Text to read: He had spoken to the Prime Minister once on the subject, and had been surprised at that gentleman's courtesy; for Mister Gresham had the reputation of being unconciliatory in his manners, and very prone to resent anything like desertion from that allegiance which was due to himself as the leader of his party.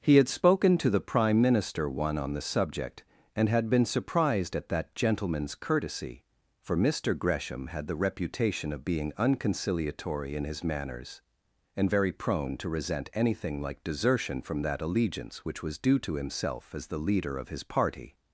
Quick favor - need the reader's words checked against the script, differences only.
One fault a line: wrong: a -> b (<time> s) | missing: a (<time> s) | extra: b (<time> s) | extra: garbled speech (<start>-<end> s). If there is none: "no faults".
wrong: once -> one (1.9 s)